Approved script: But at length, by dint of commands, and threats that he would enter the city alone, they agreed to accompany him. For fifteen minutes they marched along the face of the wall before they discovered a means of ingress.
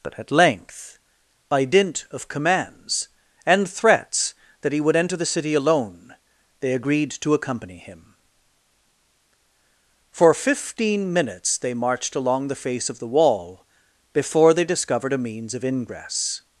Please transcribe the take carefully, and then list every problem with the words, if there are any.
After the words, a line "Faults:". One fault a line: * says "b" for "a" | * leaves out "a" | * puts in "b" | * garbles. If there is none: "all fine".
But at length, by dint of commands, and threats that he would enter the city alone, they agreed to accompany him. For fifteen minutes they marched along the face of the wall before they discovered a means of ingress.
Faults:
all fine